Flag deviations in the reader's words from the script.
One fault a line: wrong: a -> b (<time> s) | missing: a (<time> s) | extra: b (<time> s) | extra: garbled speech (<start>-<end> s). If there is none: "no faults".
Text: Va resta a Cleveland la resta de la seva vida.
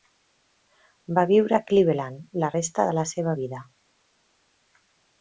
wrong: resta -> viure (1.3 s)